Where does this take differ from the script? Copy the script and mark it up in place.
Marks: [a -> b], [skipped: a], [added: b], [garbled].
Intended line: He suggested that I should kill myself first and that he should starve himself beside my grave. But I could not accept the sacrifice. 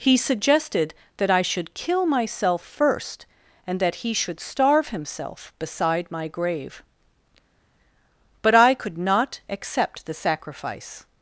He suggested that I should kill myself first and that he should starve himself beside my grave. But I could not accept the sacrifice.